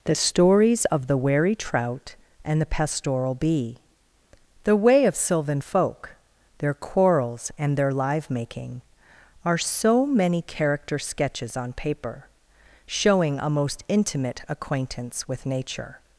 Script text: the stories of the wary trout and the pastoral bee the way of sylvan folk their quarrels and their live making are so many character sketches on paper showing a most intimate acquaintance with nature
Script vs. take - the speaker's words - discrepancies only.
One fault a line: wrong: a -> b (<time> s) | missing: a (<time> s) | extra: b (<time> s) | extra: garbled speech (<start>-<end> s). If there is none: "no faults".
no faults